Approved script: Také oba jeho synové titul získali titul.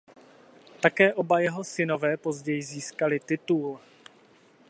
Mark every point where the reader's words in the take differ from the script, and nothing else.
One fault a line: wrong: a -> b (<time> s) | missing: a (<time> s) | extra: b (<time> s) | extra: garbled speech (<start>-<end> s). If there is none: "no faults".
wrong: titul -> později (2.2 s)